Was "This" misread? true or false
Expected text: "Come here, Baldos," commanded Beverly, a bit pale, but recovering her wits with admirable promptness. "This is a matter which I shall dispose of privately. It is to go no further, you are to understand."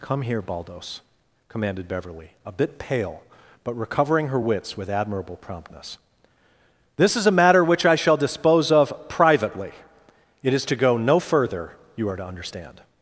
false